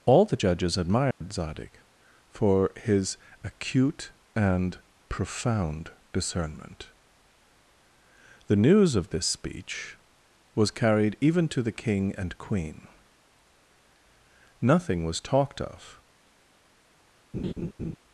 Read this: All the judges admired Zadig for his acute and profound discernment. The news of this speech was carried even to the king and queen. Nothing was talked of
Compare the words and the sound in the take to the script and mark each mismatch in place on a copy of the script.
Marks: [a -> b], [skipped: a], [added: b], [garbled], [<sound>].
All the judges admired [dropout] Zadig for his acute and profound discernment. The news of this speech was carried even to the king and queen. Nothing was talked of [laugh]